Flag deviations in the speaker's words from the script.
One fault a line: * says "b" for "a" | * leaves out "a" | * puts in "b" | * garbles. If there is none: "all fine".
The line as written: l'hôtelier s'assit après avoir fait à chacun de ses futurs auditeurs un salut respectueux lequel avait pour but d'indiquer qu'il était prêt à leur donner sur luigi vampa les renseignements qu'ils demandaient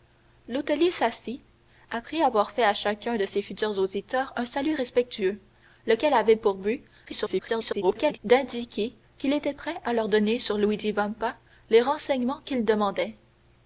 * garbles